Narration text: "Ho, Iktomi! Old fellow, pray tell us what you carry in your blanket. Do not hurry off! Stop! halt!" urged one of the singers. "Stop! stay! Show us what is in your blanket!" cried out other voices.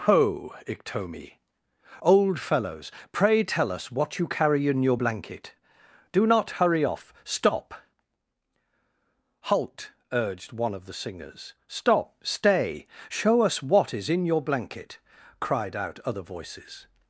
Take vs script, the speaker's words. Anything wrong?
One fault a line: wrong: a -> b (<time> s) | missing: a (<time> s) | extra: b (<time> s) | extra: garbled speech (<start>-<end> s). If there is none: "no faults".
wrong: fellow -> fellows (2.4 s)